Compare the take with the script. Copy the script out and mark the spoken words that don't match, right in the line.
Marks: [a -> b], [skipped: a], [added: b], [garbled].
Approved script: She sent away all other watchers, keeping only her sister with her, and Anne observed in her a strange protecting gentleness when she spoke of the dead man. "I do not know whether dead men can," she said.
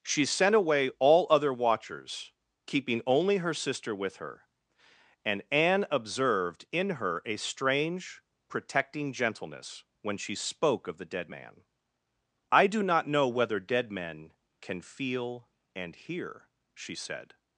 She sent away all other watchers, keeping only her sister with her, and Anne observed in her a strange protecting gentleness when she spoke of the dead man. "I do not know whether dead men can," [added: feel and hear] she said.